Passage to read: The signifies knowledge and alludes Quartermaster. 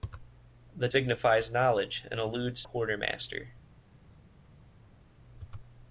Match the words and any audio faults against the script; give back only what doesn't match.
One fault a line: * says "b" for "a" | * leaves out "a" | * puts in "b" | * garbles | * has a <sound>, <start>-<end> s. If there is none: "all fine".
all fine